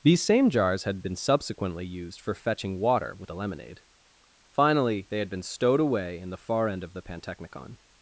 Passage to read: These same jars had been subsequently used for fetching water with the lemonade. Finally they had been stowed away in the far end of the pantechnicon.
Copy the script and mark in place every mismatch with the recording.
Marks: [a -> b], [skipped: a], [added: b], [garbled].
These same jars had been subsequently used for fetching water with the lemonade. Finally they had been stowed away in the far end of the pantechnicon.